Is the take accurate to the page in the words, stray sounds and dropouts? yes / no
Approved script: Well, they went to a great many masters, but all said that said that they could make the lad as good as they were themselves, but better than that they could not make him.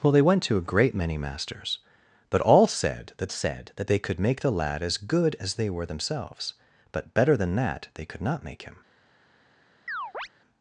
no